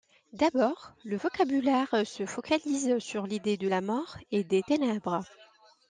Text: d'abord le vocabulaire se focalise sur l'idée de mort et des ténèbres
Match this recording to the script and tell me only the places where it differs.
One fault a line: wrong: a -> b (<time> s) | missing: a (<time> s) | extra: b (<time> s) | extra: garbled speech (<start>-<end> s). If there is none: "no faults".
extra: la (3.6 s)